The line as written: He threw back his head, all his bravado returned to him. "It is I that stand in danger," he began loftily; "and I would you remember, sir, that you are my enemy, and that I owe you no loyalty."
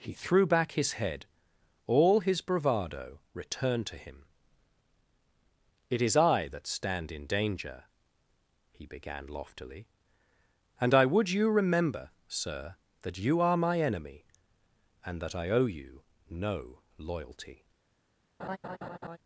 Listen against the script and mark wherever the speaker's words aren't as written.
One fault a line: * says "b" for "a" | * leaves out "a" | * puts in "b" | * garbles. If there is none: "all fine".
all fine